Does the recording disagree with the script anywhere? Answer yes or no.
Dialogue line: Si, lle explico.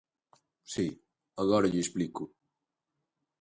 yes